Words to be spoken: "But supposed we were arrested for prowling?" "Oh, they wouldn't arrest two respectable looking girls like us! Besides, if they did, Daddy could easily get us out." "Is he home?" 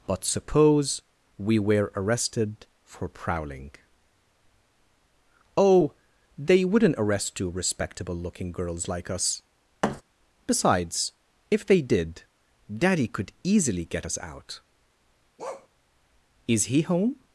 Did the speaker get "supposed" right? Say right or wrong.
wrong